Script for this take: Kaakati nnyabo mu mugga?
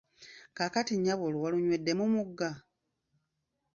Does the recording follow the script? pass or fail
fail